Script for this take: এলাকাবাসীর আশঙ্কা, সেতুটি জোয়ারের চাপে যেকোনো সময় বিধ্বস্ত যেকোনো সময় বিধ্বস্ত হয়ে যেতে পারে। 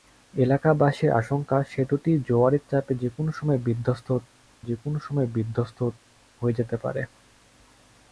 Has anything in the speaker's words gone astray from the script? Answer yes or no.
no